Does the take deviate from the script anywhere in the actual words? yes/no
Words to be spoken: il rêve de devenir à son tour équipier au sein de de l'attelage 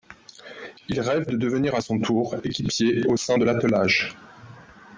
yes